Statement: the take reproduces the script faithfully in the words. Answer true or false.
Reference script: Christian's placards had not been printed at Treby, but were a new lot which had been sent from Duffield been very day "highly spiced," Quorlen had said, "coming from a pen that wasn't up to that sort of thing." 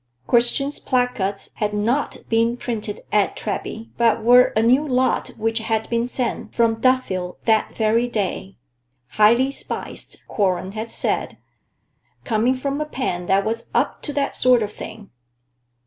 false